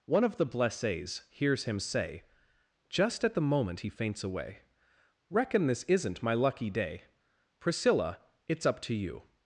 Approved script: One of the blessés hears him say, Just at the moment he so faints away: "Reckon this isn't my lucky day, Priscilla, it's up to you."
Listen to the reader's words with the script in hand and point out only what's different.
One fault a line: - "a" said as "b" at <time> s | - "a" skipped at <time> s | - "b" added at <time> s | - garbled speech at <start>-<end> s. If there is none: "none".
- "so" skipped at 3.9 s